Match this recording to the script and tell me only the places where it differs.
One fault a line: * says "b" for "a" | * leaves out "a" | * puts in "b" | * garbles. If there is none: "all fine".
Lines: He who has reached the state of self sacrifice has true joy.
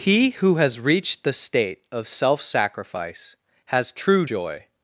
all fine